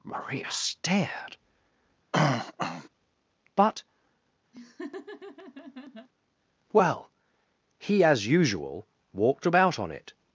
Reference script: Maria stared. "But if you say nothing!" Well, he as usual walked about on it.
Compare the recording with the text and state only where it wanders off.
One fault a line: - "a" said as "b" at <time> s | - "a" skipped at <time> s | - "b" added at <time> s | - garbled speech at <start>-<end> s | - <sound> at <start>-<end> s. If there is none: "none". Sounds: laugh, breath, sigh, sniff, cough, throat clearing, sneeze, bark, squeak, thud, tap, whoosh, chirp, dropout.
- throat clearing at 2.1-2.9 s
- "if you say nothing" skipped at 3.8 s
- laugh at 4.5-6.1 s